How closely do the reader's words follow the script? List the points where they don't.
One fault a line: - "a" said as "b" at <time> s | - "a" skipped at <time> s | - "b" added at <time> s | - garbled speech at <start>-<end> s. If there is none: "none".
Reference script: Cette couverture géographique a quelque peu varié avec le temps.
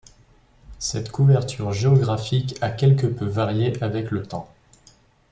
none